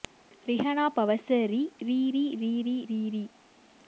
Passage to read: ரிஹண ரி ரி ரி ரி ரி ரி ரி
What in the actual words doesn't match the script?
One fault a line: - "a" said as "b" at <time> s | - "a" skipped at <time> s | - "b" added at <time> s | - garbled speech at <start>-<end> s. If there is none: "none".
- "பவச" added at 0.9 s